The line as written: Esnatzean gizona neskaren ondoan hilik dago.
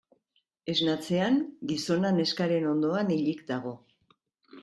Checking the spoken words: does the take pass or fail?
pass